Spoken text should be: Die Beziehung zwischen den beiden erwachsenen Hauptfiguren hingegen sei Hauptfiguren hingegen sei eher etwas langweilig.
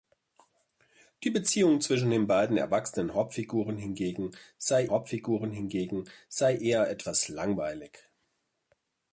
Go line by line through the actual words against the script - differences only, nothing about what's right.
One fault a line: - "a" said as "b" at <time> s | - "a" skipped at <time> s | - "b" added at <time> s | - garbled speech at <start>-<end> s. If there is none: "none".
none